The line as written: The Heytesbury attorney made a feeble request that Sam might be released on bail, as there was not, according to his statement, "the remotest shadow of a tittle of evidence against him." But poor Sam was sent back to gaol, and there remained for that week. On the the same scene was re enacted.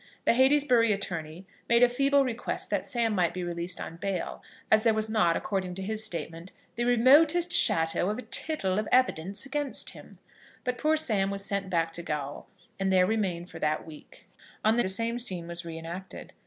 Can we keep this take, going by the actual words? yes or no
yes